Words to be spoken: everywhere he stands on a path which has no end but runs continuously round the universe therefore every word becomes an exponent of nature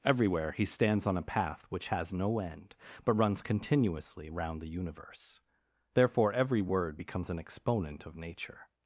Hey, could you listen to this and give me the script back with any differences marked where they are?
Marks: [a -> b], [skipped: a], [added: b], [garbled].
everywhere he stands on a path which has no end but runs continuously round the universe therefore every word becomes an exponent of nature